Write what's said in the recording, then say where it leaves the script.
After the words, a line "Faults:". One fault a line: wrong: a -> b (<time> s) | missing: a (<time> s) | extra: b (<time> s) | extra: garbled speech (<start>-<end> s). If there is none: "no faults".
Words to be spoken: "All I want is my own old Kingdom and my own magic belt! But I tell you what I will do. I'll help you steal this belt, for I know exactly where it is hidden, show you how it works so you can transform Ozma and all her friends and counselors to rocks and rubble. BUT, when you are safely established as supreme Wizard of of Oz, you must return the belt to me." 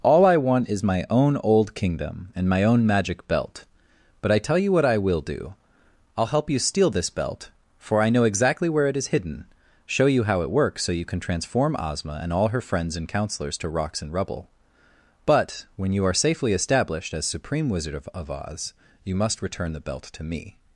"All I want is my own old Kingdom and my own magic belt! But I tell you what I will do. I'll help you steal this belt, for I know exactly where it is hidden, show you how it works so you can transform Ozma and all her friends and counselors to rocks and rubble. BUT, when you are safely established as supreme Wizard of of Oz, you must return the belt to me."
Faults:
no faults